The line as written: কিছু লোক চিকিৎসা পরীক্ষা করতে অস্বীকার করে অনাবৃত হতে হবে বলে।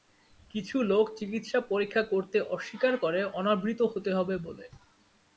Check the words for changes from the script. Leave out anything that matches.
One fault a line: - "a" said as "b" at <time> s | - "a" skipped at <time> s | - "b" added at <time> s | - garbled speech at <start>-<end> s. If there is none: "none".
none